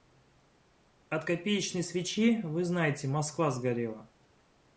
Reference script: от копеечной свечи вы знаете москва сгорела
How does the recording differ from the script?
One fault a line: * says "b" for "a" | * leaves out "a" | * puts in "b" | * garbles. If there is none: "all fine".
all fine